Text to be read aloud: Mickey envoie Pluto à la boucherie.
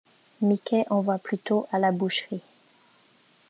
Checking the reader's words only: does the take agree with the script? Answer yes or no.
yes